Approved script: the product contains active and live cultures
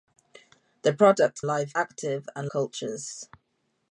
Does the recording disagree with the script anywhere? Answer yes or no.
yes